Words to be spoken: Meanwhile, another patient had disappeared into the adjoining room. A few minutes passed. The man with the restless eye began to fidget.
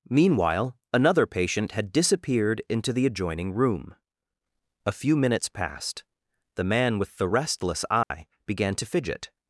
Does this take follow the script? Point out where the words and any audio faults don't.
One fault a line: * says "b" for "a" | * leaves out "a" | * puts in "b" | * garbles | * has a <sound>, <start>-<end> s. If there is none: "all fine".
* has a dropout, 8.0-8.1 s